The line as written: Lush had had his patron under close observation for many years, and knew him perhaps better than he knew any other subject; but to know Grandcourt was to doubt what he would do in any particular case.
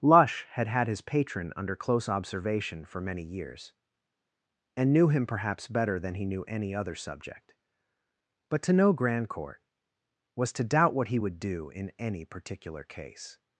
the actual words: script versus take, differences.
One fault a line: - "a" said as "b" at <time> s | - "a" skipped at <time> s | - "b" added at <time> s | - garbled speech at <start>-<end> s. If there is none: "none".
none